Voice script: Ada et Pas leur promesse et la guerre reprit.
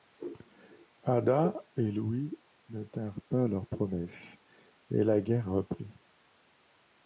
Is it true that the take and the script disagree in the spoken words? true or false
true